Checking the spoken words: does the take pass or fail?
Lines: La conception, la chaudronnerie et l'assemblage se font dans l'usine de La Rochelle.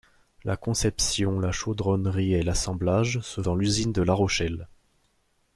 fail